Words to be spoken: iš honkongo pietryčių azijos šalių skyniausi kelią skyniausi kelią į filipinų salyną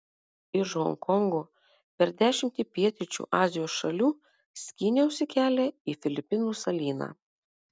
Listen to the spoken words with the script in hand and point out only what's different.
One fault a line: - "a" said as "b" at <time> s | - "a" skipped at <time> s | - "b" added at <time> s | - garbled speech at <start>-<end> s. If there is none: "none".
- "per dešimtį" added at 2.0 s
- "skyniausi kelią" skipped at 5.7 s